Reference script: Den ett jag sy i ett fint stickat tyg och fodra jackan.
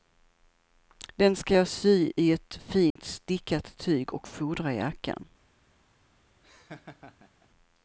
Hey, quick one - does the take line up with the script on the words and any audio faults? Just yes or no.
no